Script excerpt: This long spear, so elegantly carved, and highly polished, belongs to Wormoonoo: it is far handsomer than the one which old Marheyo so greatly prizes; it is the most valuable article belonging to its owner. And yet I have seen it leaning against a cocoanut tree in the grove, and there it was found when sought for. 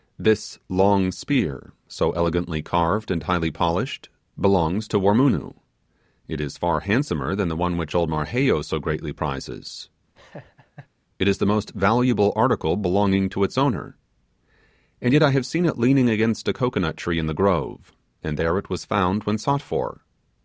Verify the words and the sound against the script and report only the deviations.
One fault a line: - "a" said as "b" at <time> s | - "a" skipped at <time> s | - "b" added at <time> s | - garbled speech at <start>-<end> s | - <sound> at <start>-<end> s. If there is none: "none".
- laugh at 10.1-10.9 s